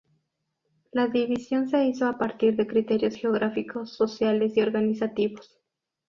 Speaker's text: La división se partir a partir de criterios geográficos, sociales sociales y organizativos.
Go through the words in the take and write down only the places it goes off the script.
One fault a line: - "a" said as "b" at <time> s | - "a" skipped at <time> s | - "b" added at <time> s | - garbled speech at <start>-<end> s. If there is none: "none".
- "partir" said as "hizo" at 1.9 s
- "sociales" skipped at 4.6 s